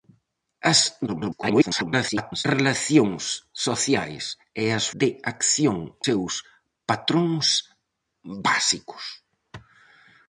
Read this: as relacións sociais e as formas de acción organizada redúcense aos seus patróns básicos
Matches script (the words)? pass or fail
fail